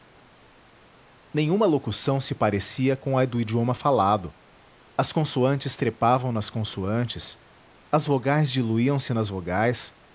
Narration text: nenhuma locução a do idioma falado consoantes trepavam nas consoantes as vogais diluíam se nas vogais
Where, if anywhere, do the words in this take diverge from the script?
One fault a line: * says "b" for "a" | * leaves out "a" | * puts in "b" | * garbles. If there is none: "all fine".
* puts in "se parecia com"
* puts in "as"